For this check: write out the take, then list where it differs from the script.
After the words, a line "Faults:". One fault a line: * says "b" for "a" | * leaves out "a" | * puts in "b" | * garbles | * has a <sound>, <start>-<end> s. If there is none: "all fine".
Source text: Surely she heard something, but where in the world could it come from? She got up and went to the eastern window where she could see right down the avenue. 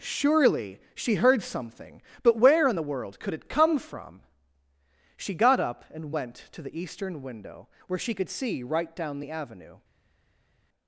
Surely she heard something, but where in the world could it come from? She got up and went to the eastern window where she could see right down the avenue.
Faults:
all fine